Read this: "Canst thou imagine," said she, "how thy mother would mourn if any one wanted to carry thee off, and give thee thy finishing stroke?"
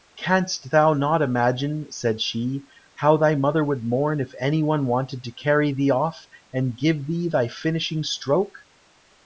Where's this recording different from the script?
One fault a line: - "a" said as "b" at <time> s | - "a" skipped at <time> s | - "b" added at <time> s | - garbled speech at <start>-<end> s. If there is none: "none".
- "not" added at 0.9 s